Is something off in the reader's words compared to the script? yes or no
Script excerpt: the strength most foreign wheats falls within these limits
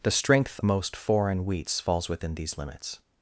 no